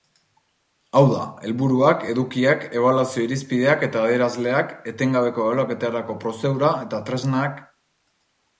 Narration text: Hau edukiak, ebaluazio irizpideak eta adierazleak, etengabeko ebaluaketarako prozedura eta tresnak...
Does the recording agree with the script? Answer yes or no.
no